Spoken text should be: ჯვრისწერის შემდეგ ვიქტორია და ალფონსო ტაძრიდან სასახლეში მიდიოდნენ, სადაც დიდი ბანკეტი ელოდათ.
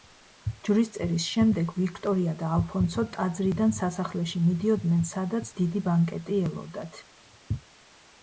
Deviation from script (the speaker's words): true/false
false